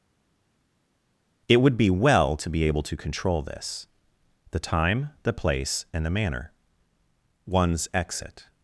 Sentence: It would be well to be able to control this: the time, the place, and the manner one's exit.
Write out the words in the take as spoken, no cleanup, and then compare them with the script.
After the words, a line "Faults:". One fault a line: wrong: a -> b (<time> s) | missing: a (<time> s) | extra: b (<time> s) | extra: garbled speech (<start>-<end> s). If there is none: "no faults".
It would be well to be able to control this: the time, the place, and the manner one's exit.
Faults:
no faults